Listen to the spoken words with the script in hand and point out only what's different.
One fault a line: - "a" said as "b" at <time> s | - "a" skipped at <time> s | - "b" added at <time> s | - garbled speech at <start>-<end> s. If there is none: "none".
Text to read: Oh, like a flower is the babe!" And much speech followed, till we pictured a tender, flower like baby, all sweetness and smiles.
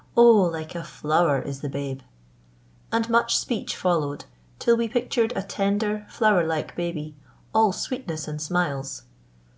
none